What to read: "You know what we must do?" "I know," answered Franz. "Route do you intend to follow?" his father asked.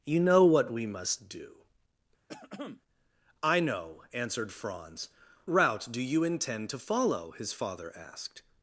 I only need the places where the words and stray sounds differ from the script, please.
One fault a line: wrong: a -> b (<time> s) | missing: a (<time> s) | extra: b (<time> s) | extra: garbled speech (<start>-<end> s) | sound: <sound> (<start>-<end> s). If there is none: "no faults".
sound: throat clearing (2.3-2.8 s)